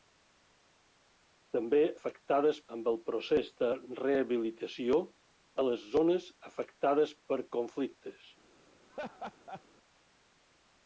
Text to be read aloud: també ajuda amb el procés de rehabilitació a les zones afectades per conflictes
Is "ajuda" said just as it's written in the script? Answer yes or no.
no